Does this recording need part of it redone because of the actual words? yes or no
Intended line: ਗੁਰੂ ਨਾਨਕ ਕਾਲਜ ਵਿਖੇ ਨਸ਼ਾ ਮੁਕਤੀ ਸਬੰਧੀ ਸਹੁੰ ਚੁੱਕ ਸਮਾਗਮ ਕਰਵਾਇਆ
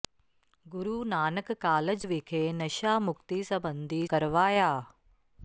yes